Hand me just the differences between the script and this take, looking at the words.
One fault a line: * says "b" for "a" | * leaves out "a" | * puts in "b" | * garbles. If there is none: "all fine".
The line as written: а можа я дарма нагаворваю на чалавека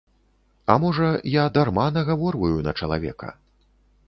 all fine